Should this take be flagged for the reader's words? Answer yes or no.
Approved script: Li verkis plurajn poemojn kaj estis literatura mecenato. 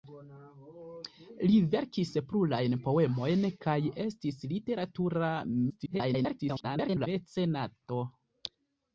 yes